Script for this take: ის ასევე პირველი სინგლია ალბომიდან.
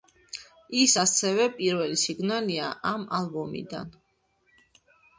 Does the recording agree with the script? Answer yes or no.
no